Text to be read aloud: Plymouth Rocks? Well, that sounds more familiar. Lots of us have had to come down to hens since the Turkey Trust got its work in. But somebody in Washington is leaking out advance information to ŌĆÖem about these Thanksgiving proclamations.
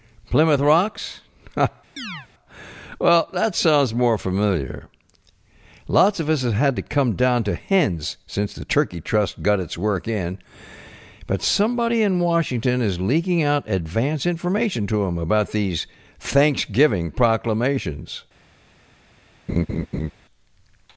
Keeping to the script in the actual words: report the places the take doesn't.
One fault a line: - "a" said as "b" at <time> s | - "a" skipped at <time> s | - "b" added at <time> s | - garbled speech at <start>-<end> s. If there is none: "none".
none